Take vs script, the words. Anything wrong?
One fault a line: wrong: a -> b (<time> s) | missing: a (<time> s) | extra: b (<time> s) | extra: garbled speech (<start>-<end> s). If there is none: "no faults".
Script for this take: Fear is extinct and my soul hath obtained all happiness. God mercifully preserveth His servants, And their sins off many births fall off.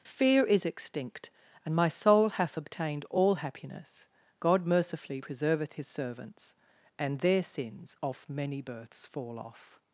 no faults